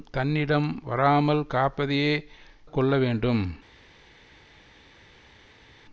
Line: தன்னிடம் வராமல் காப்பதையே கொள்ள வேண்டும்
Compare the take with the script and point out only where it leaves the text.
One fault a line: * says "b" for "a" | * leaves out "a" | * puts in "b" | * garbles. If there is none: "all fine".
all fine